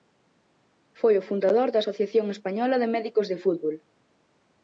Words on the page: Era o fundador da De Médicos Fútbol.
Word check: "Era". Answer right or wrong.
wrong